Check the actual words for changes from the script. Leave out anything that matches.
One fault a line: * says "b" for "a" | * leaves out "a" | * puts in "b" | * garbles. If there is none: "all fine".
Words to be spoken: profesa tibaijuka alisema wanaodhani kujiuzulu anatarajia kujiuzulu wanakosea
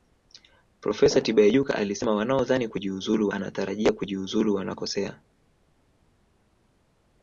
all fine